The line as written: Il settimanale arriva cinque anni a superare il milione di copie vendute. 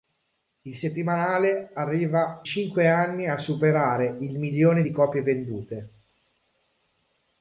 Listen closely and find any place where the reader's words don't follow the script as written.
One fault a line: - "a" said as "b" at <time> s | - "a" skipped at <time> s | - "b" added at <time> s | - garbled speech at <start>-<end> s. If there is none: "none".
none